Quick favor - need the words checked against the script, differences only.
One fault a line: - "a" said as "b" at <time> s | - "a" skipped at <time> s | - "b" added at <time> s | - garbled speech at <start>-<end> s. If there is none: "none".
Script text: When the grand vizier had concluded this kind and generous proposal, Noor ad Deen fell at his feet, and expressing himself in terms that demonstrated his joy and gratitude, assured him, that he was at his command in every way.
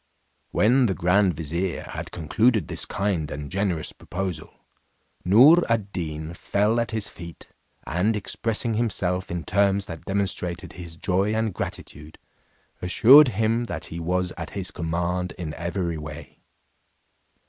none